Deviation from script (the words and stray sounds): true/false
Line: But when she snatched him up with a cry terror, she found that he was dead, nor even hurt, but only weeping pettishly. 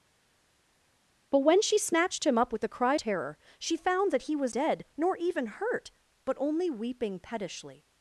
false